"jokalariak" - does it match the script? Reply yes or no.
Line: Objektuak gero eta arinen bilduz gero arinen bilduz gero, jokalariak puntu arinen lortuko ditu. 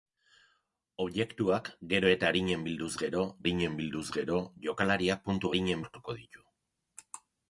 yes